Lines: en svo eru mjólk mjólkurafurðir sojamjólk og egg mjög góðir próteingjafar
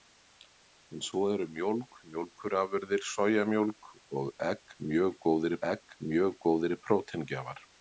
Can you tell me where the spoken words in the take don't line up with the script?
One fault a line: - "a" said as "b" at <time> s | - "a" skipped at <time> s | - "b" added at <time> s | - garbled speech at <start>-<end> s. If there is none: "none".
- "egg mjög góðir" added at 5.7 s